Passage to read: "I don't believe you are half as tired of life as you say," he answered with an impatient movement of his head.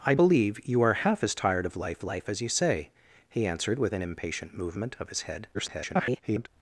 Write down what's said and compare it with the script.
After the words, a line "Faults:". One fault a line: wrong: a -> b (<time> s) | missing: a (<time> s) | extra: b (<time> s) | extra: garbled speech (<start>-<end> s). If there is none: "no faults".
"I believe you are half as tired of life life as you say," he answered with an impatient movement of his head. [garbled]
Faults:
missing: don't (0.1 s)
extra: life (2.0 s)
extra: garbled speech (5.5-6.5 s)